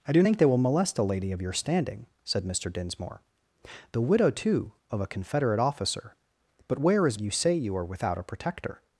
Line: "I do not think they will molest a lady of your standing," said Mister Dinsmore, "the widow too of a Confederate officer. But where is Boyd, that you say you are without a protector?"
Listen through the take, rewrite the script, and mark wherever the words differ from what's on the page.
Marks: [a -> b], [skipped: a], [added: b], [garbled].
"I do [skipped: not] think they will molest a lady of your standing," said Mister Dinsmore, "the widow too of a Confederate officer. But where is [skipped: Boyd, that] you say you are without a protector?"